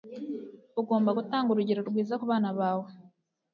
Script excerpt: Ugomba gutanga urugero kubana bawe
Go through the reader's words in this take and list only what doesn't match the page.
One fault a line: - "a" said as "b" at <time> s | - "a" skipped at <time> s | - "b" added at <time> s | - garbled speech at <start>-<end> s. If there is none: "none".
- "rwiza" added at 1.9 s